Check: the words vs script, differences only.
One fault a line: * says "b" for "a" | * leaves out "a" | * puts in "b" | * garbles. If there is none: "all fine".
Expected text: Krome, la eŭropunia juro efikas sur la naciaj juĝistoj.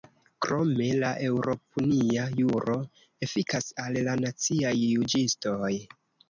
* says "al" for "sur"